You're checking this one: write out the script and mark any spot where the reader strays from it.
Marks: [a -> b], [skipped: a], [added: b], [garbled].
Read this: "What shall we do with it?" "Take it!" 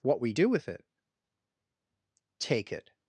"What [skipped: shall] we do with it?" "Take it!"